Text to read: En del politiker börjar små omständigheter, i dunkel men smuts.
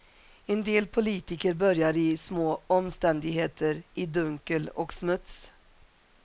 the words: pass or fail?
fail